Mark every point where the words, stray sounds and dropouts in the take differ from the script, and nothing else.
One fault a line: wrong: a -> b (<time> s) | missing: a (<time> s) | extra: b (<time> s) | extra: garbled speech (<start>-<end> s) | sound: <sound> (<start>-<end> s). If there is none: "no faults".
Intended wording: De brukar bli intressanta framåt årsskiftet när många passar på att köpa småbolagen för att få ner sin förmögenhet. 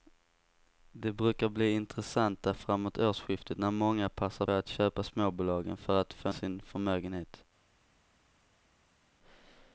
missing: på (4.5 s)
missing: ner (6.3 s)